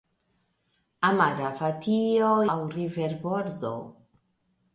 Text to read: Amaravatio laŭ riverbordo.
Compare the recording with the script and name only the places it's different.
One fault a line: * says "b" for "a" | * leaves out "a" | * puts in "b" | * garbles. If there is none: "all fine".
all fine